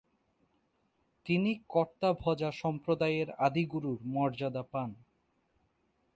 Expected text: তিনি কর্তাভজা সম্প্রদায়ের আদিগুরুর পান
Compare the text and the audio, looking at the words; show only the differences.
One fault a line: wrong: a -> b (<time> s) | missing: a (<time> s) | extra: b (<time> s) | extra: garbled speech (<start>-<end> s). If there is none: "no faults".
extra: মর্যাদা (4.0 s)